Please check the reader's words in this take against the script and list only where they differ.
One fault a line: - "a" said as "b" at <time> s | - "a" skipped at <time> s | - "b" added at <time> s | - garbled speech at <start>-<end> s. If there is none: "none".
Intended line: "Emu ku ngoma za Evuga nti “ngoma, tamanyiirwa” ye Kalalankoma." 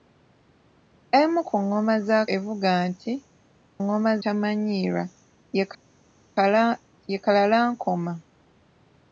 none